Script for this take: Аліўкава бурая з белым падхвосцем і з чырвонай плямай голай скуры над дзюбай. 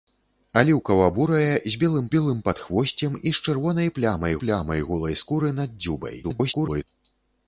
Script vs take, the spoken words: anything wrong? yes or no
yes